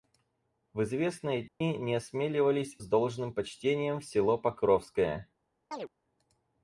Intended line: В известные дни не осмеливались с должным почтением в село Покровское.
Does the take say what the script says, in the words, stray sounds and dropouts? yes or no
no